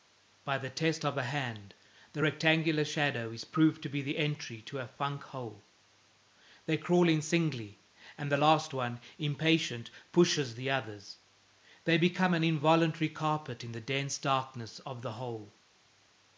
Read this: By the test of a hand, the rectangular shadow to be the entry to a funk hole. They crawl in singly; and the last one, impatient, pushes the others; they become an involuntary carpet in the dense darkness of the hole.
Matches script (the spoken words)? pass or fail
fail